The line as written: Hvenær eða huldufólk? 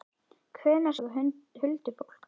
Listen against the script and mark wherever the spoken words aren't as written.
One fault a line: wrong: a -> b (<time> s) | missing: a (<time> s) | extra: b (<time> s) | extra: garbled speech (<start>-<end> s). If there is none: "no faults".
no faults